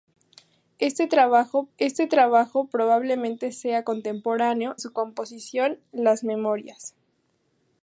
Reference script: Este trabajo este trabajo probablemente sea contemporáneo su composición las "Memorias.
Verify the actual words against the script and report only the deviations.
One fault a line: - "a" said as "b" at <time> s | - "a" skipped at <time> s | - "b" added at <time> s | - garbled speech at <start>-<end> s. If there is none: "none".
none